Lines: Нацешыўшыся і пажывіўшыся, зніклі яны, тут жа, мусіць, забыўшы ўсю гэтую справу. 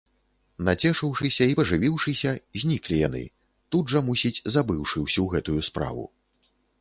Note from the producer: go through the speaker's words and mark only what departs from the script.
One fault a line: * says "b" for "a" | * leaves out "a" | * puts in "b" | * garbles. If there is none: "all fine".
all fine